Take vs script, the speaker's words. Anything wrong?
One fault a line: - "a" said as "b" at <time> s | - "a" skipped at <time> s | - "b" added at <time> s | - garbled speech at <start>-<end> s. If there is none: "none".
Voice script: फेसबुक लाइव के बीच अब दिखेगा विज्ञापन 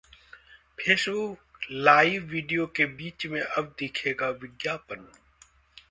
- "वीडियो" added at 2.3 s
- "में" added at 3.3 s